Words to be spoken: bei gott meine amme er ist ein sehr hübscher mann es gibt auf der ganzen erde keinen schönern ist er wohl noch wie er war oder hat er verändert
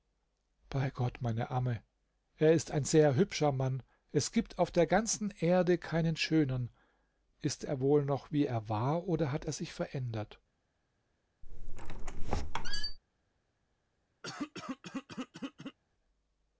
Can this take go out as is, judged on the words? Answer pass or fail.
fail